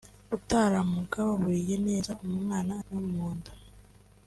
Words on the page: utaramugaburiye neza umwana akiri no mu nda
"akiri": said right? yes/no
no